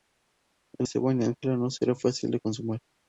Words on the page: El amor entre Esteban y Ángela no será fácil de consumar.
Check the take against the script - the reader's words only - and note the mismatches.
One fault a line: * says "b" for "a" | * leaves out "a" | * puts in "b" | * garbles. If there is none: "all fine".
* leaves out "amor entre"